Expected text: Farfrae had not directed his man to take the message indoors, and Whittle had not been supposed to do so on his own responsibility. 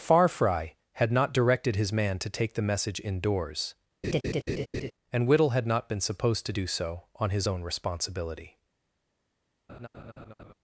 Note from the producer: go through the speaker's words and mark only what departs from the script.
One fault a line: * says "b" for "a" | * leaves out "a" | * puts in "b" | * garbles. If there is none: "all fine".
all fine